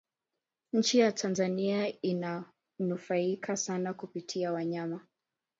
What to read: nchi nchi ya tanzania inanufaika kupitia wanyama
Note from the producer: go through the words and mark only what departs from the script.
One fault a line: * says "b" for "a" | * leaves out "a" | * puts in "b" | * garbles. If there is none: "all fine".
* leaves out "nchi"
* puts in "sana"